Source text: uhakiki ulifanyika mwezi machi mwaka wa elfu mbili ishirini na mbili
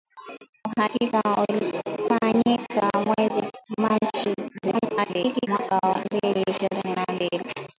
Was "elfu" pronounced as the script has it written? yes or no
no